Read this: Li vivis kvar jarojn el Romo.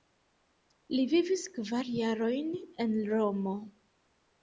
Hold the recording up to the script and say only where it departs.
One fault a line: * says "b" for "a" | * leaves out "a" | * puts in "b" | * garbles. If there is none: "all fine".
* says "en" for "el"